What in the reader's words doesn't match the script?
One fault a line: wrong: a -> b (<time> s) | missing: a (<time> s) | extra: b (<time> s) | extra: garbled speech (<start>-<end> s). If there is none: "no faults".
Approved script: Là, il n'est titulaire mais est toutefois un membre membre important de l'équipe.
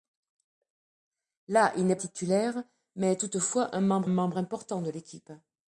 no faults